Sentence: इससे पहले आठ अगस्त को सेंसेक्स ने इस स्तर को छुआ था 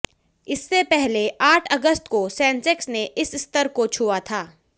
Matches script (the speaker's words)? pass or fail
pass